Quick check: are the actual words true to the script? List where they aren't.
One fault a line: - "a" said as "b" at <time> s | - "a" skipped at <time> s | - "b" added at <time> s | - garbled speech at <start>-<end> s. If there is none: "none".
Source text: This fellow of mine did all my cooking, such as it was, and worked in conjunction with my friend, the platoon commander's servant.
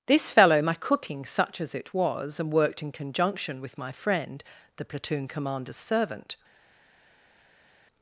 - "of mine did all" skipped at 0.6 s